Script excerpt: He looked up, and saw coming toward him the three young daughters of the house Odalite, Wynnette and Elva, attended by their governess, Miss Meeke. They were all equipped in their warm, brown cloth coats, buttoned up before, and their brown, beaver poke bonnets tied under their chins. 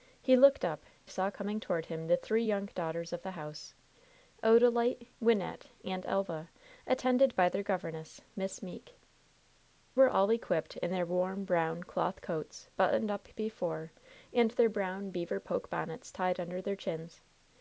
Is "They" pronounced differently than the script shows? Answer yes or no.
yes